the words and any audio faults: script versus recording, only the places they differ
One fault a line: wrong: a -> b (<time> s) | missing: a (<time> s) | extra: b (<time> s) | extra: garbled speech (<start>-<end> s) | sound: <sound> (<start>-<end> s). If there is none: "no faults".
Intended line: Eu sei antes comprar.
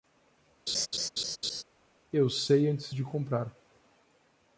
sound: laugh (0.7-1.6 s)
extra: de (2.9 s)